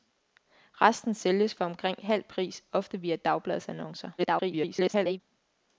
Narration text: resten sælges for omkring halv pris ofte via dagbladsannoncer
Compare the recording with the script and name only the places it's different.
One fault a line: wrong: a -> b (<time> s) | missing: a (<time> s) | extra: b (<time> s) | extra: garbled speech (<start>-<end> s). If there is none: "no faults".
extra: garbled speech (4.2-5.2 s)